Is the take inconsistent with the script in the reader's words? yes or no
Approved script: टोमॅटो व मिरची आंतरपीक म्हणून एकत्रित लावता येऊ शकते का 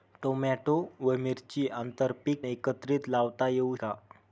yes